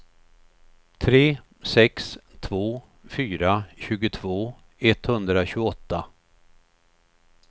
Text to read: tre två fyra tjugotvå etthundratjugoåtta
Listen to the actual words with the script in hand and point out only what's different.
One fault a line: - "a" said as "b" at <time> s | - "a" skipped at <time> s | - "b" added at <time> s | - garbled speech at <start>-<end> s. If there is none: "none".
- "sex" added at 1.6 s